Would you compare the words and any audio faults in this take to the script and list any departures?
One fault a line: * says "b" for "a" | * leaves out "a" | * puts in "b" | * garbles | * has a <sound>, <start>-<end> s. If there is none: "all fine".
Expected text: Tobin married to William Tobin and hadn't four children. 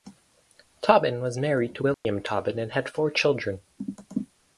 * puts in "was"
* has a dropout, 1.9-2.0 s
* says "had" for "hadn't"